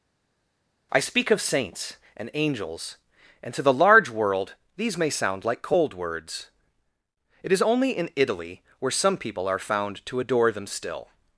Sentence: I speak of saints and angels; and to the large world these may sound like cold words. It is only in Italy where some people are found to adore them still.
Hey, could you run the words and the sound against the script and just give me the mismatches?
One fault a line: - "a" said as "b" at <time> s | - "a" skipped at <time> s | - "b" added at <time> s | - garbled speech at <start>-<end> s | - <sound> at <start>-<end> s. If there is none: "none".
none